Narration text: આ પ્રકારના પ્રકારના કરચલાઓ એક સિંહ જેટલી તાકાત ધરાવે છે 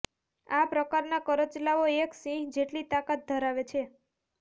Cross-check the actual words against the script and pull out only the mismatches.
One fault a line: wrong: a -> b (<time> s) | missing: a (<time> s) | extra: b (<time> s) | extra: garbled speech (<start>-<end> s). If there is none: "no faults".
missing: પ્રકારના (1.2 s)